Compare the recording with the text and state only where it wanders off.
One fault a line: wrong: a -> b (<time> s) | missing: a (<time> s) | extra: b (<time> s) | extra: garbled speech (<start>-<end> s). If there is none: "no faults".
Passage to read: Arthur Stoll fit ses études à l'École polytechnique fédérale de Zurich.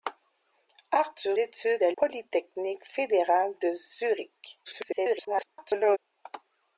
missing: Stoll fit ses (1.4 s)
missing: l'École (1.9 s)
extra: garbled speech (4.6-6.0 s)